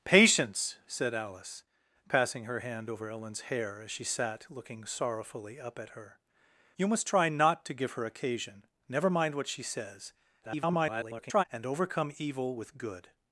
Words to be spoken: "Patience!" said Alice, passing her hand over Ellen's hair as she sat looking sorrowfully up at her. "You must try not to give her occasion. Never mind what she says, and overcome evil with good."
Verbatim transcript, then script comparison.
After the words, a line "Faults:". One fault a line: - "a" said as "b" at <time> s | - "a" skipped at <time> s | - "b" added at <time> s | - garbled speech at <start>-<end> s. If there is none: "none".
"Patience!" said Alice, passing her hand over Ellen's hair as she sat looking sorrowfully up at her. "You must try not to give her occasion. Never mind what she says, [garbled] and overcome evil with good."
Faults:
- garbled speech at 10.4-11.4 s